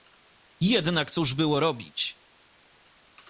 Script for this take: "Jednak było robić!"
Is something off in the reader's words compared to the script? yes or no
yes